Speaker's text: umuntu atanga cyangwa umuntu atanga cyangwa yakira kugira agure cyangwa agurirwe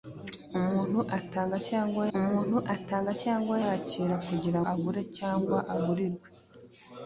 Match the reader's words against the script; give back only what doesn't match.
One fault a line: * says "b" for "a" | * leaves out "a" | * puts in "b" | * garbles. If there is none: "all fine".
all fine